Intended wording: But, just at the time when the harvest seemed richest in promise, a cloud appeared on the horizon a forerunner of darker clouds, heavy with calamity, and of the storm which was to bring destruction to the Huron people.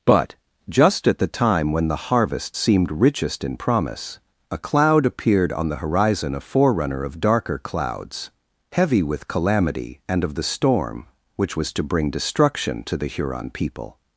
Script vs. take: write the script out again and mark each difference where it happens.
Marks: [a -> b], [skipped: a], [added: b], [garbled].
But, just at the time when the harvest seemed richest in promise, a cloud appeared on the horizon a forerunner of darker clouds, heavy with calamity, and of the storm which was to bring destruction to the Huron people.